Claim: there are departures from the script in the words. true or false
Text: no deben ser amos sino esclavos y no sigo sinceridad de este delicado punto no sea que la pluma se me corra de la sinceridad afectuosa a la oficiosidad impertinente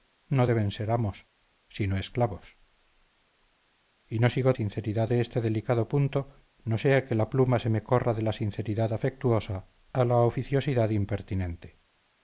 false